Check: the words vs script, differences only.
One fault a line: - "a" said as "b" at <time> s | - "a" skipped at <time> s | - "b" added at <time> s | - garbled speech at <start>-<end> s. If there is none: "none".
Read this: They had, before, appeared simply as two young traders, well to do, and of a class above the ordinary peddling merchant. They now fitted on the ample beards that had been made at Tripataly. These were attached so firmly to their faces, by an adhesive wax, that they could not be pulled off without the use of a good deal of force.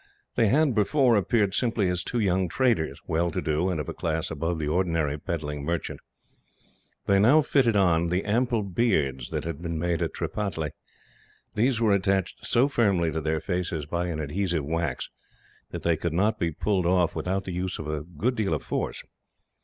none